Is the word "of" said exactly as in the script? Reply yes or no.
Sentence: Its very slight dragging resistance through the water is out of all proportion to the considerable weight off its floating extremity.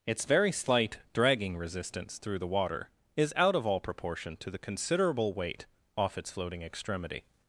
yes